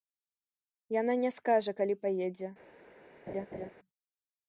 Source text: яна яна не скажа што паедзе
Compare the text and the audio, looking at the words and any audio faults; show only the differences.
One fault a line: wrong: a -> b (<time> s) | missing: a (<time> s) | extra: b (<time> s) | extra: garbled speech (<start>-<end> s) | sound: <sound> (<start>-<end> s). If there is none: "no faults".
missing: яна (1.1 s)
wrong: што -> калі (1.8 s)
sound: laugh (3.3-3.7 s)